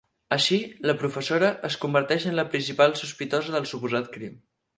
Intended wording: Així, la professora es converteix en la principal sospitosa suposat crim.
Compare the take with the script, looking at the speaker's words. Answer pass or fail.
fail